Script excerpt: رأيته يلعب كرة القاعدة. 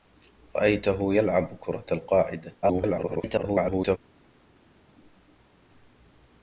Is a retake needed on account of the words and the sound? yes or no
yes